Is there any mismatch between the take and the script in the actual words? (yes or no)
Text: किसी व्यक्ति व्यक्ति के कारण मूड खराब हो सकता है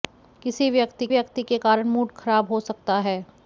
no